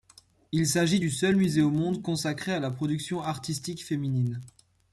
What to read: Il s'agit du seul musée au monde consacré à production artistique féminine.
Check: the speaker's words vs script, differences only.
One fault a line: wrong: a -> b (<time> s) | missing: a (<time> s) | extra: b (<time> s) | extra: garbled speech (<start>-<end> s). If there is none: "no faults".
extra: la (2.6 s)